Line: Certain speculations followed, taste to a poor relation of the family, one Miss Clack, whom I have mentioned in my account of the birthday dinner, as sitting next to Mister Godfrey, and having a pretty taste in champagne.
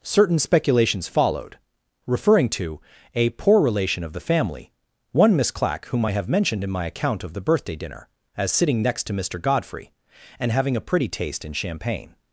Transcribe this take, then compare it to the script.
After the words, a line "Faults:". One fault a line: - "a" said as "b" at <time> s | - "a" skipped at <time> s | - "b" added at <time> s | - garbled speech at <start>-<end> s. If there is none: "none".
Certain speculations followed, referring to a poor relation of the family, one Miss Clack, whom I have mentioned in my account of the birthday dinner, as sitting next to Mister Godfrey, and having a pretty taste in champagne.
Faults:
- "taste" said as "referring" at 2.1 s